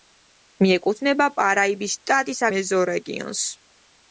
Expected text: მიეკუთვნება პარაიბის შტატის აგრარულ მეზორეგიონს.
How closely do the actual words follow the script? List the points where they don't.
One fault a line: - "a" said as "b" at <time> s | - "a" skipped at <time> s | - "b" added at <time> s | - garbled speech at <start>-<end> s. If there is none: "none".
- "აგრარულ" skipped at 2.4 s